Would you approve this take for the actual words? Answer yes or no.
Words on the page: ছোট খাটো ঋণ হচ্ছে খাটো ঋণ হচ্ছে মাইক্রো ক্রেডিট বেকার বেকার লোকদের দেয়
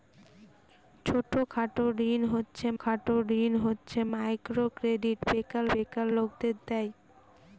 yes